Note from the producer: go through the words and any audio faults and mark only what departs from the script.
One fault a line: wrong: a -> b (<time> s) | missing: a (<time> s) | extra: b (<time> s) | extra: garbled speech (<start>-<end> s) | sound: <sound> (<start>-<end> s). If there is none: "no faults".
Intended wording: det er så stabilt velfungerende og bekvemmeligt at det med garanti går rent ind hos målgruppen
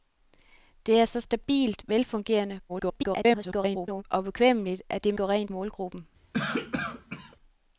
extra: garbled speech (2.7-4.0 s)
missing: med garanti (5.1 s)
missing: ind hos (5.5 s)
sound: cough (6.3-7.4 s)